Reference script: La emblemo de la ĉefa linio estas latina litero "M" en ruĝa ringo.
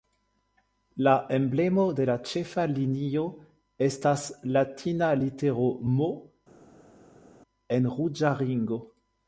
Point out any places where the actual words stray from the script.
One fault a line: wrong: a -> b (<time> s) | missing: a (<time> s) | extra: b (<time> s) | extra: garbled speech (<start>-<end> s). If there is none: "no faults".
no faults